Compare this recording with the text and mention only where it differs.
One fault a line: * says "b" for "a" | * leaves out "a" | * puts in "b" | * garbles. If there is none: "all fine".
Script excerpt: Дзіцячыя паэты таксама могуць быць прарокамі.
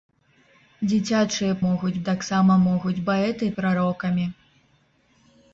* says "могуць" for "паэты"
* says "паэты" for "быць"